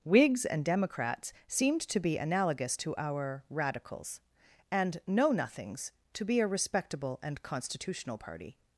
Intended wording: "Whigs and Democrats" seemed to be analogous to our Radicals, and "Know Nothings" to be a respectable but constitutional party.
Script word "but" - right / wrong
wrong